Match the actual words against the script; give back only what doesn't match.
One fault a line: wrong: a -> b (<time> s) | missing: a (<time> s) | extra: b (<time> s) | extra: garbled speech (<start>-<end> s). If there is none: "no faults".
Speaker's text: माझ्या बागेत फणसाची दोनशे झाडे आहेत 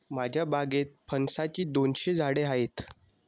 no faults